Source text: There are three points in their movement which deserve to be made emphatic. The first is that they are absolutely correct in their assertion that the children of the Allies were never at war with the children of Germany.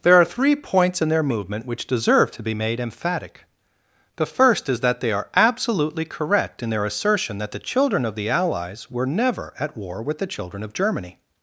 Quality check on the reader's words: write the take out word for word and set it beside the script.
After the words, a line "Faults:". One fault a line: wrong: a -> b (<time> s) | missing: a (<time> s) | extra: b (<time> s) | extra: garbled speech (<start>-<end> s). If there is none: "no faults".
There are three points in their movement which deserve to be made emphatic. The first is that they are absolutely correct in their assertion that the children of the Allies were never at war with the children of Germany.
Faults:
no faults